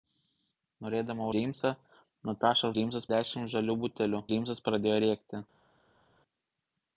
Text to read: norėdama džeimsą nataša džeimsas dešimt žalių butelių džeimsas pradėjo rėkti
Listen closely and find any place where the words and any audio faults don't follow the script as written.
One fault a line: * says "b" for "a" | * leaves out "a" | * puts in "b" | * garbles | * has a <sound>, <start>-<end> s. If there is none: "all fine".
all fine